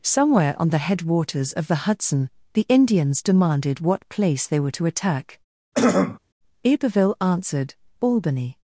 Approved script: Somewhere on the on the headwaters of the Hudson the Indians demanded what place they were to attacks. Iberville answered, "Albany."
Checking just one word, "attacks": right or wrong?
wrong